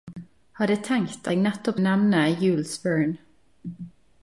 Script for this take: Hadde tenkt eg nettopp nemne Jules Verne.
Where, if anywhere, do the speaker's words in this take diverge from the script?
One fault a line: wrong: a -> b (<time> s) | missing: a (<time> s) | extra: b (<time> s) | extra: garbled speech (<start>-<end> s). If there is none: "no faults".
no faults